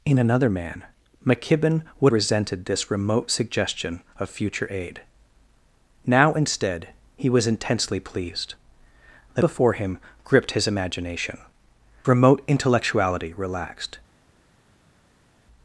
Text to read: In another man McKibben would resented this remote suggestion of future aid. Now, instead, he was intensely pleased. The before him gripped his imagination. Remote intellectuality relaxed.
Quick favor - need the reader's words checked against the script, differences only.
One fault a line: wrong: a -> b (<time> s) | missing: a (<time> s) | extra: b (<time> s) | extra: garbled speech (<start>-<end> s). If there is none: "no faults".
no faults